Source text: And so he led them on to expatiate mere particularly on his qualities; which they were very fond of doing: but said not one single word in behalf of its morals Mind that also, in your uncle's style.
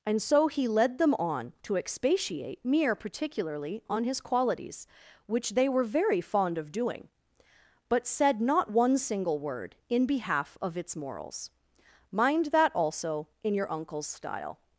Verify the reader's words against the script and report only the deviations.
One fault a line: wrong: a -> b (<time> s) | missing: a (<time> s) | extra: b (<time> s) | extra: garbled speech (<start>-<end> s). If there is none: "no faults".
no faults